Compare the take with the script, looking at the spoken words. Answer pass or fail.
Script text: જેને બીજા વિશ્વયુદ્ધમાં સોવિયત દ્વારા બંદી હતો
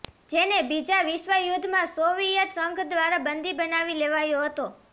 fail